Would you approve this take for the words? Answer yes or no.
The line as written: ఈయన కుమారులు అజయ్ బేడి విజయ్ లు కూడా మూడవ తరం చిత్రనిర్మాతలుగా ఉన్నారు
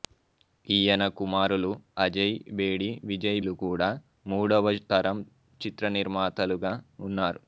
yes